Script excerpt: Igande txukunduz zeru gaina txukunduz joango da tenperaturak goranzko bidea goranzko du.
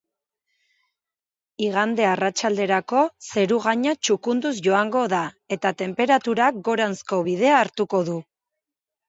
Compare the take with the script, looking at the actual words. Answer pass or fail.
fail